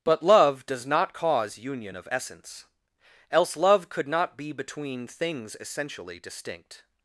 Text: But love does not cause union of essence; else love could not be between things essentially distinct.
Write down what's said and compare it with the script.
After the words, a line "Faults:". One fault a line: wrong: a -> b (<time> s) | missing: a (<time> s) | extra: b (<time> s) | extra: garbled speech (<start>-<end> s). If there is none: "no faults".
But love does not cause union of essence; else love could not be between things essentially distinct.
Faults:
no faults